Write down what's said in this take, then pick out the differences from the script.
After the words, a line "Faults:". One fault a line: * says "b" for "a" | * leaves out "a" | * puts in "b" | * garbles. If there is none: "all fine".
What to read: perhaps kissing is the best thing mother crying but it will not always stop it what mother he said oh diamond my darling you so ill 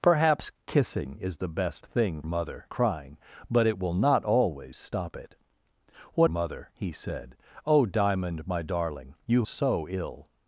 perhaps kissing is the best thing mother crying but it will not always stop it what mother he said oh diamond my darling you so ill
Faults:
all fine